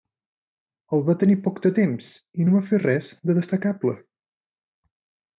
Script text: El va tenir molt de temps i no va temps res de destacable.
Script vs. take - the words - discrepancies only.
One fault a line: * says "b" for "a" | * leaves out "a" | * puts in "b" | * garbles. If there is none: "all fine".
* says "poc" for "molt"
* says "fer" for "temps"